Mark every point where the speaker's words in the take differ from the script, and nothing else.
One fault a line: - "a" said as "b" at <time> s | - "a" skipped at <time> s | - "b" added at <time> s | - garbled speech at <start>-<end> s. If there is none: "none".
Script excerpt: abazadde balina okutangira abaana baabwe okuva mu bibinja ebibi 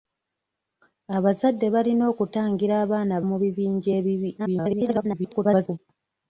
- "baabwe okuva" skipped at 3.1 s
- garbled speech at 4.4-5.8 s